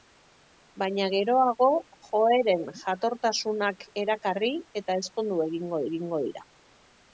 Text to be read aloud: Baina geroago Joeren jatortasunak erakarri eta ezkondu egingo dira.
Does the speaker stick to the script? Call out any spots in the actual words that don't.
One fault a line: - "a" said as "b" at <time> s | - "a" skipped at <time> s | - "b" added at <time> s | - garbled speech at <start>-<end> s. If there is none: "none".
- "egingo" added at 5.9 s